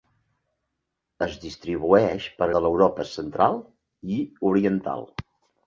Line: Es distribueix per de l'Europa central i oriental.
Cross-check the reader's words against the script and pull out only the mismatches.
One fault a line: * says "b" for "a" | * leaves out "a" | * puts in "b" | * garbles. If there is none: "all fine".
all fine